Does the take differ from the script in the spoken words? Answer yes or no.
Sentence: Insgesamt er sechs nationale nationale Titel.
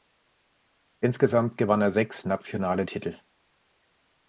yes